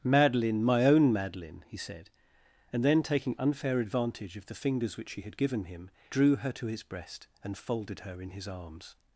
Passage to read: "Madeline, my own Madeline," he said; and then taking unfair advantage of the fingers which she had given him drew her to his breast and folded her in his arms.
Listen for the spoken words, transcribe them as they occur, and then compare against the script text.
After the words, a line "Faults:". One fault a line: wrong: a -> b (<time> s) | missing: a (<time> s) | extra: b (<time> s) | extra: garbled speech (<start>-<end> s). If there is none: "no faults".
"Madeline, my own Madeline," he said; and then taking unfair advantage of the fingers which she had given him drew her to his breast and folded her in his arms.
Faults:
no faults